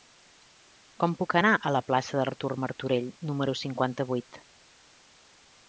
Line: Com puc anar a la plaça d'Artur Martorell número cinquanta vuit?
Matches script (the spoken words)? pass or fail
pass